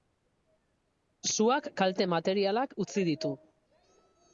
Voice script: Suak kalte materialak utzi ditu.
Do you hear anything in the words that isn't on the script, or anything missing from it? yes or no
no